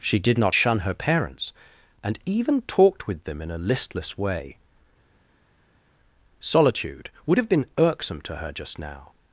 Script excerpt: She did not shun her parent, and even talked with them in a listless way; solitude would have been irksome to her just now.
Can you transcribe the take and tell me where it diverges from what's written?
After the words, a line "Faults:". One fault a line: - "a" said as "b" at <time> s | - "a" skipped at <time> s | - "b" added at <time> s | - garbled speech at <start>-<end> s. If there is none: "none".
She did not shun her parents, and even talked with them in a listless way; solitude would have been irksome to her just now.
Faults:
- "parent" said as "parents" at 0.9 s